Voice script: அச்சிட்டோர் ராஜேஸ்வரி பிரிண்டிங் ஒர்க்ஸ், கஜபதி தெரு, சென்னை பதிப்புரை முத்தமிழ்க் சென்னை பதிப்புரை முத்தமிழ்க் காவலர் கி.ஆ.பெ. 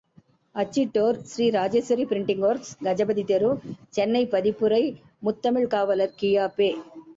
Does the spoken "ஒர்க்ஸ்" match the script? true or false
true